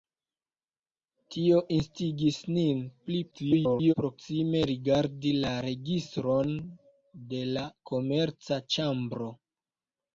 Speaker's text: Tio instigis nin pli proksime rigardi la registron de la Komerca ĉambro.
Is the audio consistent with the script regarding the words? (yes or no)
no